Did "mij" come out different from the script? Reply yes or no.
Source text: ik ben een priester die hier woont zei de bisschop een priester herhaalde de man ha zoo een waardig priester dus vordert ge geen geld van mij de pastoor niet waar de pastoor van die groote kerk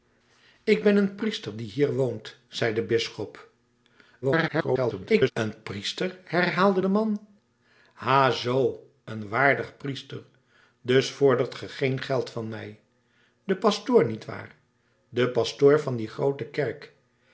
no